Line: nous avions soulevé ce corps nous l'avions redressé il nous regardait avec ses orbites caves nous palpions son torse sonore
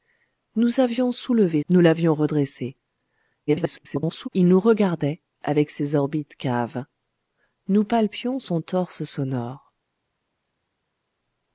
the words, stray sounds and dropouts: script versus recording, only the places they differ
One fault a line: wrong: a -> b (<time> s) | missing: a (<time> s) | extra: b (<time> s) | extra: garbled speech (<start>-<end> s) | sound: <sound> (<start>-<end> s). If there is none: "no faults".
missing: ce corps (1.6 s)
extra: garbled speech (3.5-4.3 s)